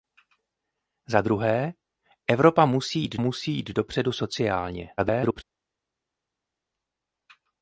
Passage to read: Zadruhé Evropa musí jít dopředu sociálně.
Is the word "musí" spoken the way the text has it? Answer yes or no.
yes